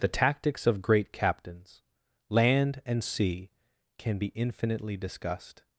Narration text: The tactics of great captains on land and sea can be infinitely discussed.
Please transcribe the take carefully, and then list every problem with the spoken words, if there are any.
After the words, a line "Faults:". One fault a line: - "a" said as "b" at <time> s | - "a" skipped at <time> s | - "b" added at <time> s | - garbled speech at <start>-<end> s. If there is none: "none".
The tactics of great captains land and sea can be infinitely discussed.
Faults:
- "on" skipped at 1.8 s